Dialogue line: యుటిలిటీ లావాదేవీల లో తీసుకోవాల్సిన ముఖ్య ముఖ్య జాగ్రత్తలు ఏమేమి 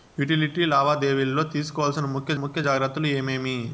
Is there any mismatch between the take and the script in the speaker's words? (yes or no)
no